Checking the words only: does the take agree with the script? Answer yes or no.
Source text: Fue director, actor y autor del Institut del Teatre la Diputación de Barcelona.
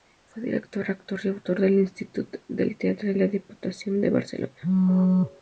yes